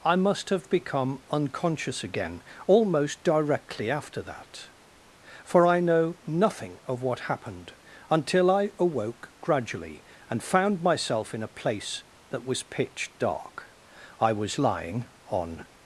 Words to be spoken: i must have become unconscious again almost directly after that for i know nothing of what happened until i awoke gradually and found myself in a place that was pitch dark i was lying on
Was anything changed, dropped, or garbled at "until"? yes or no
no